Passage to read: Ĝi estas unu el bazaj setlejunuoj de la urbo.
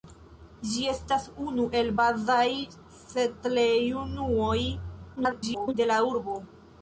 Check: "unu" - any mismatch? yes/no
no